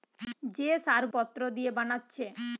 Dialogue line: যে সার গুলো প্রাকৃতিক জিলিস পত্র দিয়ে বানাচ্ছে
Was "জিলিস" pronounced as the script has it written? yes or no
no